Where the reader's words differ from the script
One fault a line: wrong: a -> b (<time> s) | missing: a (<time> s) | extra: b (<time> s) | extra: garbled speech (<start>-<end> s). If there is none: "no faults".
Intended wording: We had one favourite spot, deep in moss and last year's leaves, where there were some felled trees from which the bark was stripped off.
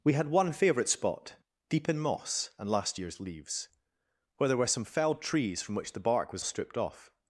no faults